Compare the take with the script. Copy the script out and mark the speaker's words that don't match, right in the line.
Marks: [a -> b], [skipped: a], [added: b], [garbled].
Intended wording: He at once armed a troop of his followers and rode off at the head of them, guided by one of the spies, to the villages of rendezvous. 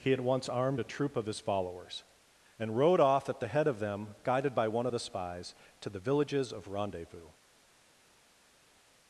He at once armed a troop of his followers and rode off at the head of them, guided by one of the spies, to the villages of rendezvous.